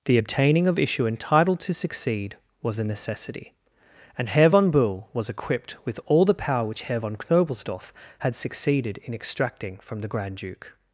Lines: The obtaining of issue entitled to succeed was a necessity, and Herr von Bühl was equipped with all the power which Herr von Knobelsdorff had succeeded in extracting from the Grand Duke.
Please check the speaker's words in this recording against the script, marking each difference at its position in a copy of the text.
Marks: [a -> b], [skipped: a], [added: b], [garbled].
The obtaining of issue entitled to succeed was a necessity, and Herr von Bühl was equipped with all the power which Herr von Knobelsdorff had succeeded in extracting from the Grand Duke.